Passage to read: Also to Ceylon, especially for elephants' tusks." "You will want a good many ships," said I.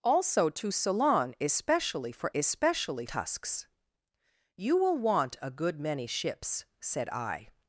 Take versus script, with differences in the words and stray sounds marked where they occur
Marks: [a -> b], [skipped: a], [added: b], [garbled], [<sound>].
Also to Ceylon, especially for [elephants' -> especially] tusks." "You will want a good many ships," said I.